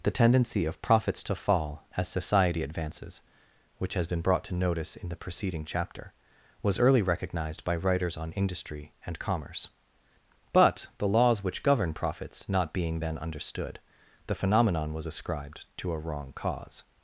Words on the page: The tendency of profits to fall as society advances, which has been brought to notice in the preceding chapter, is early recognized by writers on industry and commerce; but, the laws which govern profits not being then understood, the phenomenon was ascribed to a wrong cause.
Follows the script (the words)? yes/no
no